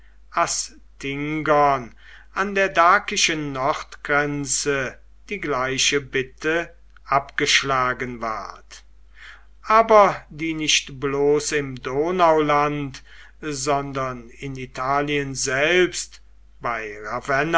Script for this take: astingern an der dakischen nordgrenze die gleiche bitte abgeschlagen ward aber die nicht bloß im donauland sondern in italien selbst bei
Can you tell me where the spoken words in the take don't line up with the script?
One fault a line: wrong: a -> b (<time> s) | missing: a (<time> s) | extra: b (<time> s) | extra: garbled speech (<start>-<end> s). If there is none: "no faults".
no faults